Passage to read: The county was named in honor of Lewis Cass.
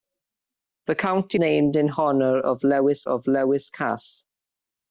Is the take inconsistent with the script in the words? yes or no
yes